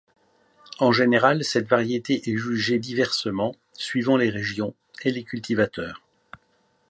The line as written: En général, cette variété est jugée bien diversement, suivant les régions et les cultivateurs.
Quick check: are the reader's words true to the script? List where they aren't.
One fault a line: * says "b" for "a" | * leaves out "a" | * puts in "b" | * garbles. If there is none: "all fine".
* leaves out "bien"